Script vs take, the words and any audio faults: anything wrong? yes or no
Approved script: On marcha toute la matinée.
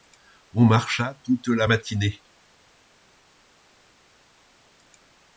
no